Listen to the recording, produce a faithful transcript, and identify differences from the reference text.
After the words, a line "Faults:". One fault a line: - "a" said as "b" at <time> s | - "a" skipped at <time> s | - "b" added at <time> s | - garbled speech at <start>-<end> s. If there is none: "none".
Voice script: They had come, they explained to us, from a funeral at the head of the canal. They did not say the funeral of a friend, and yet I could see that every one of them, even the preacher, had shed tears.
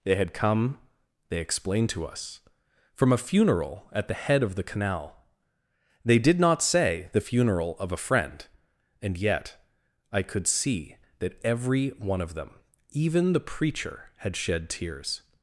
They had come, they explained to us, from a funeral at the head of the canal. They did not say the funeral of a friend, and yet I could see that every one of them, even the preacher, had shed tears.
Faults:
none